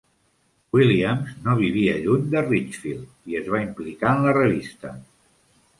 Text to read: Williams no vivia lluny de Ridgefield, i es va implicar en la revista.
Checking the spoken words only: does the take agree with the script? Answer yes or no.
yes